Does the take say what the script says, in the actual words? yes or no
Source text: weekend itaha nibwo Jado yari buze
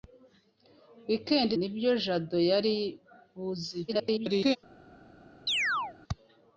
no